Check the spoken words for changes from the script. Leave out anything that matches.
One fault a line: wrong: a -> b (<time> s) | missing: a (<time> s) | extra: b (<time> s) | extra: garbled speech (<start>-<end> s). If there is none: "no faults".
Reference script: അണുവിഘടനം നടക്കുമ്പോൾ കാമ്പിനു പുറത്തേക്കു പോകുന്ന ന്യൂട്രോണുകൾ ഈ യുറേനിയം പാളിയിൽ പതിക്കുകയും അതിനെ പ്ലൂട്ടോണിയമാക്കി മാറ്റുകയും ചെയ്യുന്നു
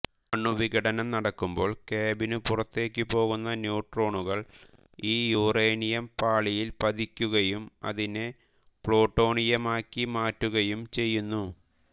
no faults